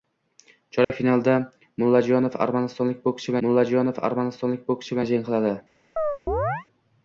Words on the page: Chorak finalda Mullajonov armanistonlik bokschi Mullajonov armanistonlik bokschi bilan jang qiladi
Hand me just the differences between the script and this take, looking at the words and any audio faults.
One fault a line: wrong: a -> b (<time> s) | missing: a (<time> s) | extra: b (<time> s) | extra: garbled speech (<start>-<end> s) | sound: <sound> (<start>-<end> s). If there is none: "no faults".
sound: dropout (0.8-0.9 s)
sound: chirp (6.0-6.7 s)